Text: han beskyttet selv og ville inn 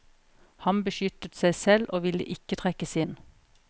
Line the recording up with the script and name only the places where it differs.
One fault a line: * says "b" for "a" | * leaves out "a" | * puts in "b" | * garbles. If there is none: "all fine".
* puts in "seg"
* puts in "ikke trekkes"